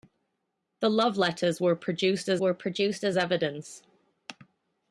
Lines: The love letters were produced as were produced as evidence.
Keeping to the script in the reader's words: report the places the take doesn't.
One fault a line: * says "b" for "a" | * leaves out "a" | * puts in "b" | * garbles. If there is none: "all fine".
all fine